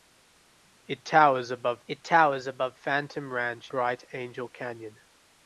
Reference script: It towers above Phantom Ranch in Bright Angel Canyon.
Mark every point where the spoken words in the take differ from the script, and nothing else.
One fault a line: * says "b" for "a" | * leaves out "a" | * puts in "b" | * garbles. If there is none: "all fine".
* puts in "it towers above"
* leaves out "in"